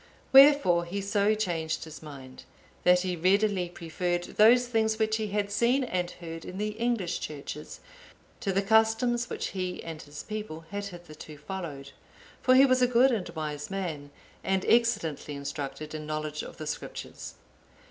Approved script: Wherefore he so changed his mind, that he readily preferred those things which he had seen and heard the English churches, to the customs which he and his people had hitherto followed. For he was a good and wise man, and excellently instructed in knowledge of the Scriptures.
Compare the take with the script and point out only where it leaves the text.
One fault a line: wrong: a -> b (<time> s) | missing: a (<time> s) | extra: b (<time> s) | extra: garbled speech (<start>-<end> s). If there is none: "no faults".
extra: in (6.4 s)